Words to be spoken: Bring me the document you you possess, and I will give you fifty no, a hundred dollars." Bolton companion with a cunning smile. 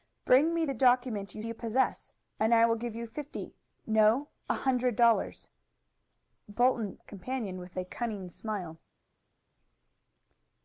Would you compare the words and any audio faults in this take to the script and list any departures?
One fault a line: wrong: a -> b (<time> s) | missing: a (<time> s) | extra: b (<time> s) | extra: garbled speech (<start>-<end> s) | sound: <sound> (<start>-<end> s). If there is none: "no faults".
no faults